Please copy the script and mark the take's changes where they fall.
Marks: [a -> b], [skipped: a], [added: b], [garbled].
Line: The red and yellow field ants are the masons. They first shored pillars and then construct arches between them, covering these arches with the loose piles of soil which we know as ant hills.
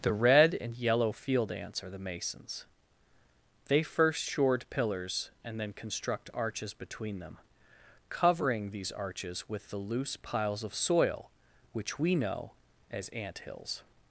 The red and yellow field ants are the masons. They first shored pillars and then construct arches between them, covering these arches with the loose piles of soil which we know as ant hills.